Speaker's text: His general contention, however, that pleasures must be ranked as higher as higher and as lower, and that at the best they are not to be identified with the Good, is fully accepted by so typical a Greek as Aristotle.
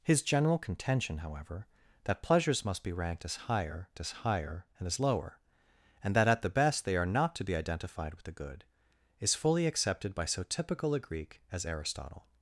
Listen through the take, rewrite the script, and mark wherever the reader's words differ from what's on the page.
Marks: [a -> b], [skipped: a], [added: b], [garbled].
His general contention, however, that pleasures must be ranked as higher as higher and as lower, and that at the best they are not to be identified with the Good, is fully accepted by so typical a Greek as Aristotle.